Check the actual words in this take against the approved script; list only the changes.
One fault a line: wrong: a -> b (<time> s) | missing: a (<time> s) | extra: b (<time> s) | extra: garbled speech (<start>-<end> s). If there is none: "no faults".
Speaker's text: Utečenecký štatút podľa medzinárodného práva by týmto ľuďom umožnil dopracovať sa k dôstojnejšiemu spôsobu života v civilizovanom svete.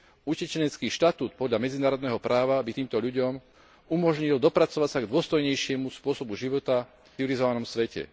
missing: v (6.8 s)